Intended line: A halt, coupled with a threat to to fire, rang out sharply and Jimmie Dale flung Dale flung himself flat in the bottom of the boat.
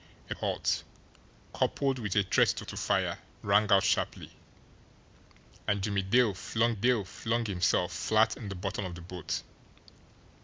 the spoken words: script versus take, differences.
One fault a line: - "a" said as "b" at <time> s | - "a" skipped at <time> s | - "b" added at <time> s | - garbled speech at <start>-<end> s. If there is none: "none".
none